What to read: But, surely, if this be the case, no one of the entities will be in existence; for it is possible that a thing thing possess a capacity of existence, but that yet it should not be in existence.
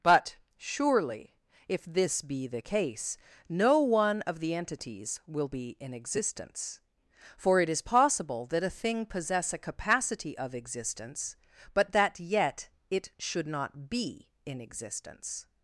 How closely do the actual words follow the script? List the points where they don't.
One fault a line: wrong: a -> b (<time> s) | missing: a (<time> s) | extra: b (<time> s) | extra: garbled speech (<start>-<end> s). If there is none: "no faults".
missing: thing (9.1 s)